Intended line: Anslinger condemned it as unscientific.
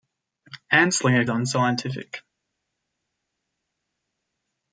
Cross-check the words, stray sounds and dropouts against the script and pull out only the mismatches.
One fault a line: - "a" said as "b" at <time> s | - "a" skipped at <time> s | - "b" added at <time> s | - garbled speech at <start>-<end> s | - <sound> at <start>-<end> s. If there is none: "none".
- "condemned it as" skipped at 1.3 s